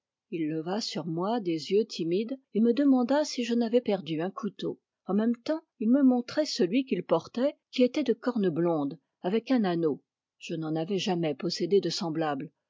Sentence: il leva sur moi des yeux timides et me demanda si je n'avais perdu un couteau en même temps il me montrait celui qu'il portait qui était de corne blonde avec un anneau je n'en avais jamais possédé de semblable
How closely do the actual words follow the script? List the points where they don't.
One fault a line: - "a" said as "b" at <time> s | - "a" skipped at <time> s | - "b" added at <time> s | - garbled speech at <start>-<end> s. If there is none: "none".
none